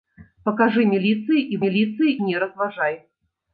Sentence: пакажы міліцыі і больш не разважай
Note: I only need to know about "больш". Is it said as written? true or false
false